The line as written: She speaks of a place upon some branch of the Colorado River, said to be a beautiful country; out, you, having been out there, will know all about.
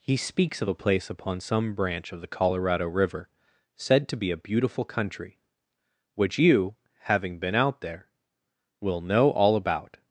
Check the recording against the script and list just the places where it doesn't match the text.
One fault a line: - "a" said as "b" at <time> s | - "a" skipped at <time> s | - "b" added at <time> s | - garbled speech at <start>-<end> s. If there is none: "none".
- "She" said as "He" at 0.0 s
- "out" said as "which" at 6.1 s